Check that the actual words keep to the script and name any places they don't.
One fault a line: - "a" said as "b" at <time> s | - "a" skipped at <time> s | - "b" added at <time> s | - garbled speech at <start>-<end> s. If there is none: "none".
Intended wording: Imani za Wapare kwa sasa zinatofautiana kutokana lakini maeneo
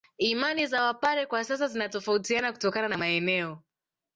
- "lakini" said as "na" at 2.9 s